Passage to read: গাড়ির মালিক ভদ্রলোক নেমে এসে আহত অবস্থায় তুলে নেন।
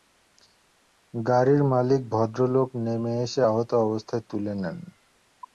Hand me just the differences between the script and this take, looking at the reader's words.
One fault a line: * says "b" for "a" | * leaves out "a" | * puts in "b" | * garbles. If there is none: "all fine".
all fine